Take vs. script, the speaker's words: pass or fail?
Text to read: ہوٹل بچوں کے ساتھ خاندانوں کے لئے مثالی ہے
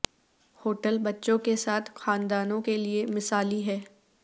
pass